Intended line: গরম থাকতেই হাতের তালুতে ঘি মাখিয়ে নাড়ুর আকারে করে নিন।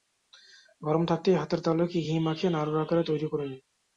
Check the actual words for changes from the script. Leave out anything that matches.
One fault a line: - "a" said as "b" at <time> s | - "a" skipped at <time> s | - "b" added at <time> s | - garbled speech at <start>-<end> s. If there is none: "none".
- "তৈরি" added at 3.0 s